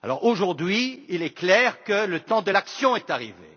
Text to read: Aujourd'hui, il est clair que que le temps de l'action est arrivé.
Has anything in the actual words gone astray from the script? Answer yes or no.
yes